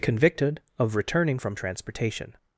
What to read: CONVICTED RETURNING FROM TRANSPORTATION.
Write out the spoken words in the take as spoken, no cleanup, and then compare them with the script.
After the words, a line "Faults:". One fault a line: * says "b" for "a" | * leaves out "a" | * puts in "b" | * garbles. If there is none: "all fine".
CONVICTED OF RETURNING FROM TRANSPORTATION.
Faults:
* puts in "OF"